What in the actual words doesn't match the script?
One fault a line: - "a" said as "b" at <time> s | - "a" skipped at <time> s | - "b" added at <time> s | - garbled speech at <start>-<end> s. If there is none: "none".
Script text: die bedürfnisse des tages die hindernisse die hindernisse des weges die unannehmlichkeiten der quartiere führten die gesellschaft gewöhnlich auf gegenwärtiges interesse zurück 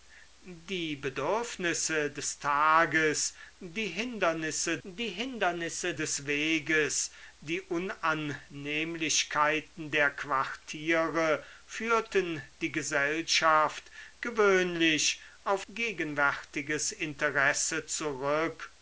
none